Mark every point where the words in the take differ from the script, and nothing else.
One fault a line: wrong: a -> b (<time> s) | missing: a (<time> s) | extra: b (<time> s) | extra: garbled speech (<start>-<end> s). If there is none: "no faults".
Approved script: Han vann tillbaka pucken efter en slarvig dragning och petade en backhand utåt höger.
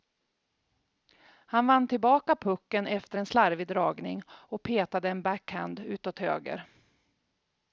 no faults